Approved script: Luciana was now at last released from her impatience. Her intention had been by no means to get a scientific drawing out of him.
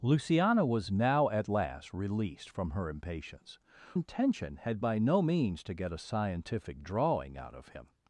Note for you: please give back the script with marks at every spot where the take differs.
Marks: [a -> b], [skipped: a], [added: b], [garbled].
Luciana was now at last released from her impatience. [skipped: Her] intention had [skipped: been] by no means to get a scientific drawing out of him.